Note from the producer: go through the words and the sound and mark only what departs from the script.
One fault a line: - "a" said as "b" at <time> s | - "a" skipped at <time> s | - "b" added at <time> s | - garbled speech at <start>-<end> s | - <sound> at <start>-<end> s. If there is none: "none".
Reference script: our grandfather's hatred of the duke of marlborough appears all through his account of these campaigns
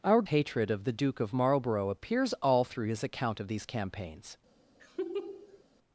- "grandfather's" skipped at 0.2 s
- laugh at 4.8-5.6 s